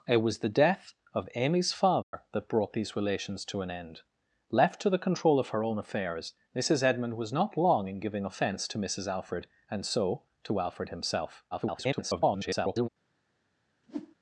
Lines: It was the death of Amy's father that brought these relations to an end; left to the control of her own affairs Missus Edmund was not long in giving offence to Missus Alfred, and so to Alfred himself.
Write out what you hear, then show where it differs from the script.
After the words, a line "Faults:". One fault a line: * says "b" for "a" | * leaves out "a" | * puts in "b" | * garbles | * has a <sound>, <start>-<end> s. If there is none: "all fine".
It was the death of Amy's father that brought these relations to an end; left to the control of her own affairs Missus Edmund was not long in giving offence to Missus Alfred, and so to Alfred himself. [garbled]
Faults:
* has a dropout, 2.0-2.1 s
* garbles
* has a whoosh, 13.8-14.2 s